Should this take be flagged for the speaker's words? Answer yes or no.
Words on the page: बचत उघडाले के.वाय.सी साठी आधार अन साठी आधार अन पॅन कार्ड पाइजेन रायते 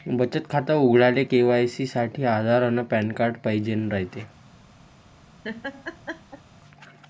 yes